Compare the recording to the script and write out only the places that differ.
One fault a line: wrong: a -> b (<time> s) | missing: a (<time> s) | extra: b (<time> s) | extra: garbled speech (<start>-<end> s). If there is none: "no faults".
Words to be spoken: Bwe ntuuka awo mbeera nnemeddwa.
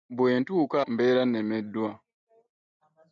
missing: awo (0.8 s)